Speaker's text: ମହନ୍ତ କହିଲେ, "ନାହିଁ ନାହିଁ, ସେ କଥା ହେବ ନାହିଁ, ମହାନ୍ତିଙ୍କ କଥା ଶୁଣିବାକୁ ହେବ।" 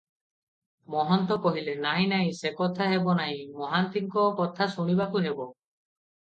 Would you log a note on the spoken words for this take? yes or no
no